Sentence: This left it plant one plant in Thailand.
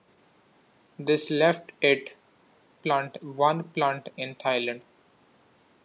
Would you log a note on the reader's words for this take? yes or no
no